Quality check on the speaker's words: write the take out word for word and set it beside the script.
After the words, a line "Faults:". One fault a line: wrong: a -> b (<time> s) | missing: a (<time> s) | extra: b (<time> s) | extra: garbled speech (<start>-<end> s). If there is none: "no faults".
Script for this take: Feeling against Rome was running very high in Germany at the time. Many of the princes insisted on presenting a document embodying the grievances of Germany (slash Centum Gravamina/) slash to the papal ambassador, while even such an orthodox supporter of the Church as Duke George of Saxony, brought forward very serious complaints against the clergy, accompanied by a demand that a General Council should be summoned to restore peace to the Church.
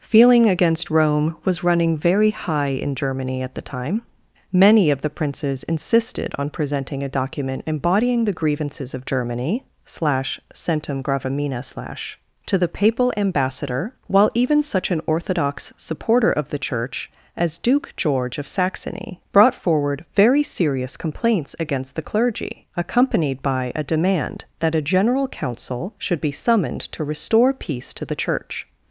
Feeling against Rome was running very high in Germany at the time. Many of the princes insisted on presenting a document embodying the grievances of Germany (slash Centum Gravamina/) slash to the papal ambassador, while even such an orthodox supporter of the Church as Duke George of Saxony, brought forward very serious complaints against the clergy, accompanied by a demand that a General Council should be summoned to restore peace to the Church.
Faults:
no faults